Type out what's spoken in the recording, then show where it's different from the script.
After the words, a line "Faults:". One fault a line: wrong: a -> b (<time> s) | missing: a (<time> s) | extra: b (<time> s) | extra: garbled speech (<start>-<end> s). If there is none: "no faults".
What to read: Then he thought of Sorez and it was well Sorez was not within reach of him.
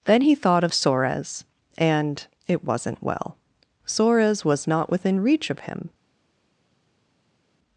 Then he thought of Sorez and it wasn't well Sorez was not within reach of him.
Faults:
wrong: was -> wasn't (2.6 s)